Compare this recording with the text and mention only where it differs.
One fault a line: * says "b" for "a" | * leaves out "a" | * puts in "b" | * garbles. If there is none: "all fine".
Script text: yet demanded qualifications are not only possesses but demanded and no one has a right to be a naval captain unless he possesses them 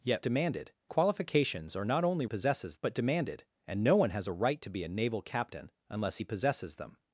all fine